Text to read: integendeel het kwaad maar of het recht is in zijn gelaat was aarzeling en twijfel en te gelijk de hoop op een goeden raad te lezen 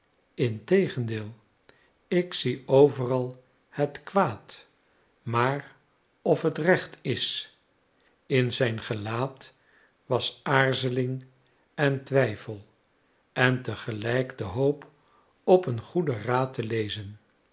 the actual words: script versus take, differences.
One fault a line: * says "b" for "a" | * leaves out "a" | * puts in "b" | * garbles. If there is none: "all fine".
* puts in "ik zie overal"